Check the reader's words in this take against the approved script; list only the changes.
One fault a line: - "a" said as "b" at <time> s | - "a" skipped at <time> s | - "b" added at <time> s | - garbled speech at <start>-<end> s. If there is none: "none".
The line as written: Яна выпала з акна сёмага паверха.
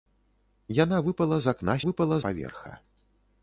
- "сёмага" said as "выпала" at 1.9 s